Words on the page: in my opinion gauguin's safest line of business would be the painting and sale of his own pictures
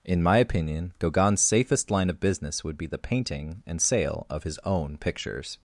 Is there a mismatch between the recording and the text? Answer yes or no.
no